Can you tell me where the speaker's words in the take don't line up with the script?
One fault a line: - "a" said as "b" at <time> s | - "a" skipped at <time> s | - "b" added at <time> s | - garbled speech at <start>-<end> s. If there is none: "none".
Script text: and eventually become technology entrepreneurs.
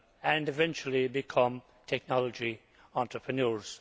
none